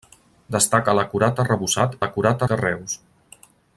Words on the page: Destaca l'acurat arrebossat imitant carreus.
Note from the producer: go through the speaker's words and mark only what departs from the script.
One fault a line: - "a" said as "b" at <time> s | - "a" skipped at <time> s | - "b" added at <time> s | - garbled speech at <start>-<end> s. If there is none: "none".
- "imitant" said as "l'acurat" at 2.0 s